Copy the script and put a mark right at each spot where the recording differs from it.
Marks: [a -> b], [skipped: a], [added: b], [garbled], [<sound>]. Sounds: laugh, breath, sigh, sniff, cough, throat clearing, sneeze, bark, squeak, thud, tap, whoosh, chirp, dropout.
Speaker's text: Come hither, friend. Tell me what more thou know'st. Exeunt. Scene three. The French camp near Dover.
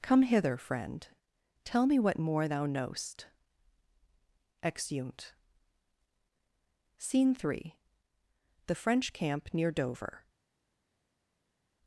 Come hither, friend. Tell me what more thou know'st. Exeunt. Scene three. The French camp near Dover.